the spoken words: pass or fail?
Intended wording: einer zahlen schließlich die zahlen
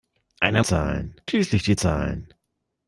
pass